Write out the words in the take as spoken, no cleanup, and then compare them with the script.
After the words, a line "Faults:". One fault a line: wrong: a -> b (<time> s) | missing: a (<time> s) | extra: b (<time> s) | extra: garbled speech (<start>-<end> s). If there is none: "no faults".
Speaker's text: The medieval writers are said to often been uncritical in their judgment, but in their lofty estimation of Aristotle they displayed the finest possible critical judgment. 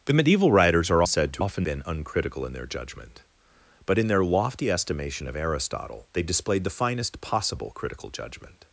The medieval writers are said to often been uncritical in their judgment, but in their lofty estimation of Aristotle they displayed the finest possible critical judgment.
Faults:
no faults